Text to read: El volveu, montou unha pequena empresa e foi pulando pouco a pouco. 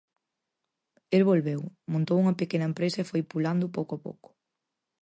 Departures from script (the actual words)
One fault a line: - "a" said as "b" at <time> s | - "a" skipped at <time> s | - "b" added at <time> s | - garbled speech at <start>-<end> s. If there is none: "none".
none